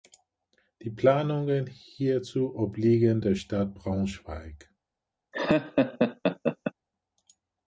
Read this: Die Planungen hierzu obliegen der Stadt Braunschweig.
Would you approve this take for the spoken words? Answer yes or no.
yes